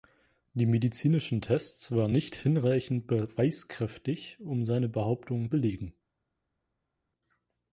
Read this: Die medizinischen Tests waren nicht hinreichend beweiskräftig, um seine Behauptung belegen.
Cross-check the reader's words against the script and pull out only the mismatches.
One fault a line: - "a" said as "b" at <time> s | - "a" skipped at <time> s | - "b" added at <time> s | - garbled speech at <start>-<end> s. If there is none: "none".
none